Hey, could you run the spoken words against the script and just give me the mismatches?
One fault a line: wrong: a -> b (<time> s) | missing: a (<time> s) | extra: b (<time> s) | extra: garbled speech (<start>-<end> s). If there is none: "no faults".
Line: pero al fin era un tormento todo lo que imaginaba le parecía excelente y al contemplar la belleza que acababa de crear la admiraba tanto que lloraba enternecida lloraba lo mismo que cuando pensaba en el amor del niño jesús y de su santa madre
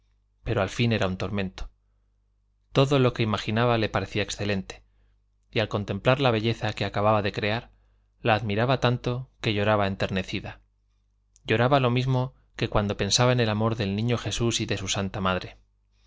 no faults